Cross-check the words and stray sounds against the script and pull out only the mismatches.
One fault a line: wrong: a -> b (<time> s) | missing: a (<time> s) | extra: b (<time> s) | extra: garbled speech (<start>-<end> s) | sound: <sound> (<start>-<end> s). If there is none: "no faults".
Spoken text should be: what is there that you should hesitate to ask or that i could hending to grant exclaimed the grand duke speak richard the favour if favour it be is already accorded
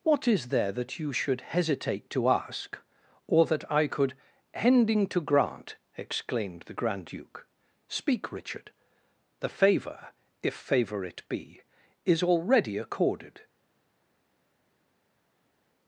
no faults